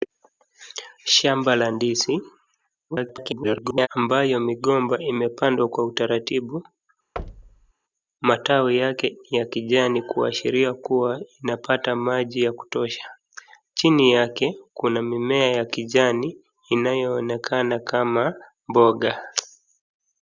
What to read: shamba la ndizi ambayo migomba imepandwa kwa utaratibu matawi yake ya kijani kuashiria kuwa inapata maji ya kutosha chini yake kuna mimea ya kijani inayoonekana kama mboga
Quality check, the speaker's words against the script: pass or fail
fail